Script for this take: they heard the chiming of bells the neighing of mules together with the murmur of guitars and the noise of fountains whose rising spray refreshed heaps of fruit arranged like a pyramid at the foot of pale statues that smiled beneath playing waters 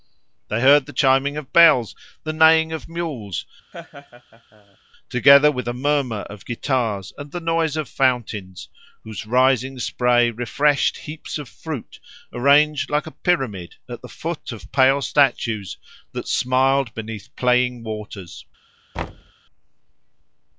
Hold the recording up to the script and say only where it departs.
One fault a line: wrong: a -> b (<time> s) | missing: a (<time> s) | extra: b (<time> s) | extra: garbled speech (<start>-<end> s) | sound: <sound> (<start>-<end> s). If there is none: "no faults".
sound: laugh (3.7-4.8 s)
sound: thud (18.9-19.3 s)